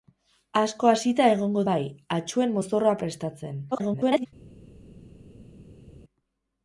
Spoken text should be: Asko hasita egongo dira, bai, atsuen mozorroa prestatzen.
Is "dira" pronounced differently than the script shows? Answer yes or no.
yes